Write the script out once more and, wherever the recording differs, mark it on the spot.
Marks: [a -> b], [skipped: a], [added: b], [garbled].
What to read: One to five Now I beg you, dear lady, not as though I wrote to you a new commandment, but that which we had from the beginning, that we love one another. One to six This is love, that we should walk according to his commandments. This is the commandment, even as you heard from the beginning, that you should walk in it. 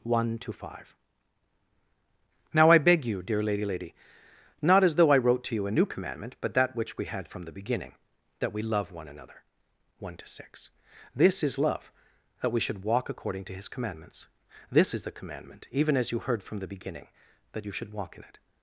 One to five Now I beg you, dear lady, [added: lady] not as though I wrote to you a new commandment, but that which we had from the beginning, that we love one another. One to six This is love, that we should walk according to his commandments. This is the commandment, even as you heard from the beginning, that you should walk in it.